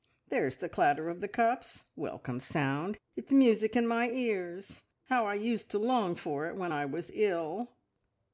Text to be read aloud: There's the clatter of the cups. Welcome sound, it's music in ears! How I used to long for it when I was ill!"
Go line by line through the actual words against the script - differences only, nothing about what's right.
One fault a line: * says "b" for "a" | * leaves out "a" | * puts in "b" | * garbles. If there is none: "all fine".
* puts in "my"